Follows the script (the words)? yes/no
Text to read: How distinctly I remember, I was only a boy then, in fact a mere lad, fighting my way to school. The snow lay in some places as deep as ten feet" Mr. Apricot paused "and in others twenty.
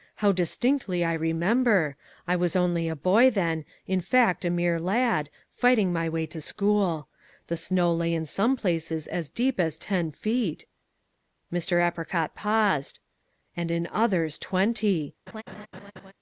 yes